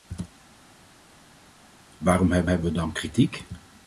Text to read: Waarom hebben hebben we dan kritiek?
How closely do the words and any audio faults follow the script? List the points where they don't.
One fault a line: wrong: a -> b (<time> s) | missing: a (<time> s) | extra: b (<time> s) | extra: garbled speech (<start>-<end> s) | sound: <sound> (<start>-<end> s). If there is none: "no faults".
no faults